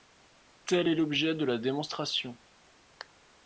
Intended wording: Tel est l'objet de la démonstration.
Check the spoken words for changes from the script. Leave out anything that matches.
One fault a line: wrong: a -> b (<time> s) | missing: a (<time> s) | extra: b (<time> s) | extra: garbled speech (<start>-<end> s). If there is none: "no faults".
no faults